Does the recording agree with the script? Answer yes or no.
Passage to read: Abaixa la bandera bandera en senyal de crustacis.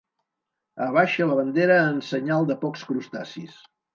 no